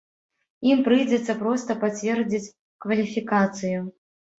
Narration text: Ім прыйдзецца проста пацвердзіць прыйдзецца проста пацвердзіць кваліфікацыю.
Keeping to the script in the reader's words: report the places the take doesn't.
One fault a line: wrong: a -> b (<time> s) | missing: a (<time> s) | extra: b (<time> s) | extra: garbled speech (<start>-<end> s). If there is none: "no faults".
missing: прыйдзецца проста пацвердзіць (2.4 s)